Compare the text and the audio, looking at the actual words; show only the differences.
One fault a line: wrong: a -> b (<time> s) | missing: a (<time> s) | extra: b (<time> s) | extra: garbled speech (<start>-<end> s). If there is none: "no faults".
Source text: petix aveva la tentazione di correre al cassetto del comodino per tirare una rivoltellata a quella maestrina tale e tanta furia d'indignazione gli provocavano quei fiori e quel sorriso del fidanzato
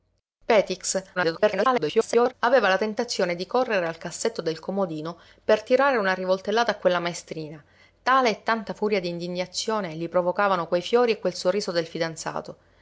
extra: garbled speech (1.2-2.3 s)